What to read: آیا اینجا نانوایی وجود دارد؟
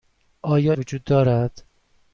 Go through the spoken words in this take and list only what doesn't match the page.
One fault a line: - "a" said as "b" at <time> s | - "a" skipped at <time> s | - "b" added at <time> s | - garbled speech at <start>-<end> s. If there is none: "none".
- "اینجا نانوایی" skipped at 0.7 s